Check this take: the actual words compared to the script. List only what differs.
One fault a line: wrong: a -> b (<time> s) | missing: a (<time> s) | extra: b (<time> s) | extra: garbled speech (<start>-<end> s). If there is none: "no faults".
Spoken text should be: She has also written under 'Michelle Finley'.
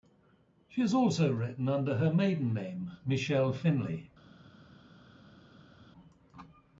extra: her maiden name (2.0 s)